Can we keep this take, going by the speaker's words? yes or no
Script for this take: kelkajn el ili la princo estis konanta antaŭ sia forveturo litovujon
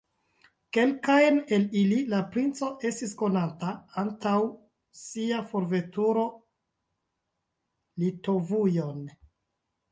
yes